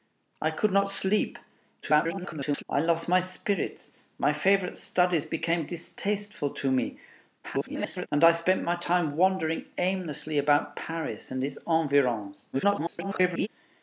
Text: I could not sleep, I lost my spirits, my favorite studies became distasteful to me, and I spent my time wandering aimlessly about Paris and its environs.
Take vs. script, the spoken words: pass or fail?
fail